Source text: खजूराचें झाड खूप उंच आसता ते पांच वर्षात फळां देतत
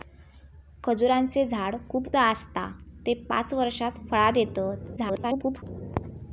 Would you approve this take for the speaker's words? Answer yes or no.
no